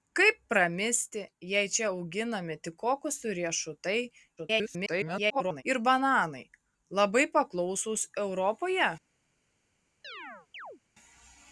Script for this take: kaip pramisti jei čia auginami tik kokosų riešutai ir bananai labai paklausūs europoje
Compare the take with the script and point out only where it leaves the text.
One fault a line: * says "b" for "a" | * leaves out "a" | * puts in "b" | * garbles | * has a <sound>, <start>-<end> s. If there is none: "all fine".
* garbles
* has a chirp, 10.0-10.8 s